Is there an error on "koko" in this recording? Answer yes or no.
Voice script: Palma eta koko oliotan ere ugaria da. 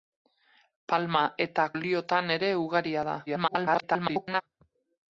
yes